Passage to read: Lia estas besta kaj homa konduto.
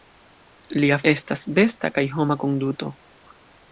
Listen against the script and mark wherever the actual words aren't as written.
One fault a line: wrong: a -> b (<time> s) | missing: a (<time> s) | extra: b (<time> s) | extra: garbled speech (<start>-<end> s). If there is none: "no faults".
no faults